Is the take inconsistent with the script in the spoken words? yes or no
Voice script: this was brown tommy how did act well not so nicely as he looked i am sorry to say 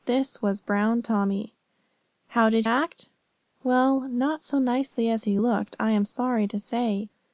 no